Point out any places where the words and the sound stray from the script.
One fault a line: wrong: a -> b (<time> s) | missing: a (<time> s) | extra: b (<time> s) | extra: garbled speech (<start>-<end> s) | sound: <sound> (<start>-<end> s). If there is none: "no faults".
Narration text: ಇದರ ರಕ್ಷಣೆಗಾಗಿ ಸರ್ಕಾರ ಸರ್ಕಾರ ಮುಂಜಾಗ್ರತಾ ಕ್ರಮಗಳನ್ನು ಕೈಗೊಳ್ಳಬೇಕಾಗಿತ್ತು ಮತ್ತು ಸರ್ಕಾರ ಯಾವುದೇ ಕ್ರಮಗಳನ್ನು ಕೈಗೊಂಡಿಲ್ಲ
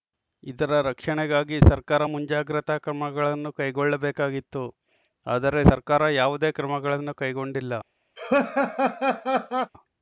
missing: ಸರ್ಕಾರ (2.0 s)
wrong: ಮತ್ತು -> ಆದರೆ (5.3 s)
sound: laugh (8.2-9.7 s)